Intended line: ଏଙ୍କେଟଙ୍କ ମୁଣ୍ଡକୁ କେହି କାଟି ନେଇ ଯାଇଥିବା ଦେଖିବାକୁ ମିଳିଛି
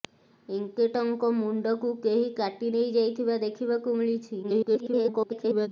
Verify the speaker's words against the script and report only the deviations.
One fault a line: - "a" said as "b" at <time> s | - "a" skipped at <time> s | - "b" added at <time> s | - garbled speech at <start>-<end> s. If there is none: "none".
- garbled speech at 4.4-5.7 s